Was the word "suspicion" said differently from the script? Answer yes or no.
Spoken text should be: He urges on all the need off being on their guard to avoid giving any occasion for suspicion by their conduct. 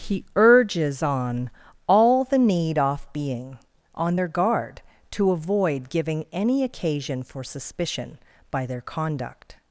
no